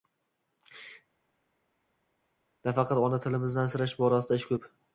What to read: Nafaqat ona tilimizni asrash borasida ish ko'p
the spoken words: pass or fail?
pass